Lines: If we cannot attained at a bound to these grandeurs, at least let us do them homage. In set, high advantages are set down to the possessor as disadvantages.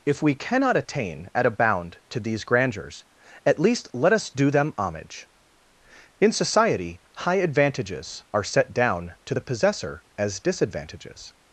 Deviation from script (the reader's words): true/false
true